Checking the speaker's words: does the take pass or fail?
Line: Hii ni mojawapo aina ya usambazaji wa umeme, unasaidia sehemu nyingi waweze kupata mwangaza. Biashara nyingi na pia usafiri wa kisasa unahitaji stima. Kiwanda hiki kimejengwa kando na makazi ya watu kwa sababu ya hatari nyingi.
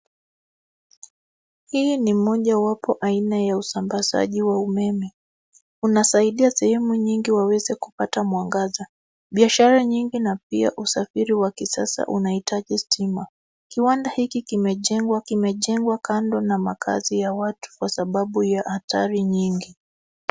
fail